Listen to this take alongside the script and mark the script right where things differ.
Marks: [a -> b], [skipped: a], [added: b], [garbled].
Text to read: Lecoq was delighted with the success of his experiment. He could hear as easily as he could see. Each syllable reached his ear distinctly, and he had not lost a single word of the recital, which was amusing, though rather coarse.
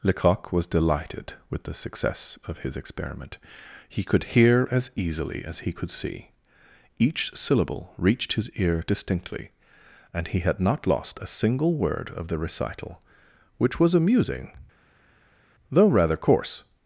Lecoq was delighted with the success of his experiment. He could hear as easily as he could see. Each syllable reached his ear distinctly, and he had not lost a single word of the recital, which was amusing, though rather coarse.